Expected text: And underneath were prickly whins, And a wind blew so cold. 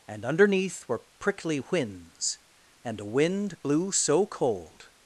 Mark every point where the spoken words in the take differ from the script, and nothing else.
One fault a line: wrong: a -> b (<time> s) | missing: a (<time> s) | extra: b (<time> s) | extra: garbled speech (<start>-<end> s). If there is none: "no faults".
no faults